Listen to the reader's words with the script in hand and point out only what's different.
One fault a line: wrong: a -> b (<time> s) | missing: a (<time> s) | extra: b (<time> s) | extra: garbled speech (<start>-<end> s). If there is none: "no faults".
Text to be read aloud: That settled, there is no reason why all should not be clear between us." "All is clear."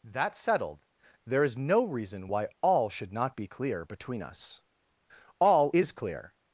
no faults